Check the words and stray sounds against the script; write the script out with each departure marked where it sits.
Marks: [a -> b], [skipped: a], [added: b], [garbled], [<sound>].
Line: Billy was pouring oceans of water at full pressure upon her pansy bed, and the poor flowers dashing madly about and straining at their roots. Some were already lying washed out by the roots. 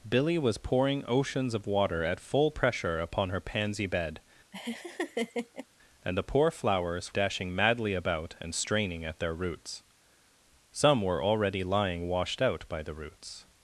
Billy was pouring oceans of water at full pressure upon her pansy bed, [laugh] and the poor flowers dashing madly about and straining at their roots. Some were already lying washed out by the roots.